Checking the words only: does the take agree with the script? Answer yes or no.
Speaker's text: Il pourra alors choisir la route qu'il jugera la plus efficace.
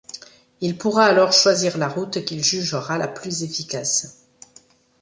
yes